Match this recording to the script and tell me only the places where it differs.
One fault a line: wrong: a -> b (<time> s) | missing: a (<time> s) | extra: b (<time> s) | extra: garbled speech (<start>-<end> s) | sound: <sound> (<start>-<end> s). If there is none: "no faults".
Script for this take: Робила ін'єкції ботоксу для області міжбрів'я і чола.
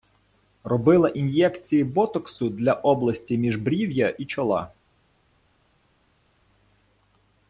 no faults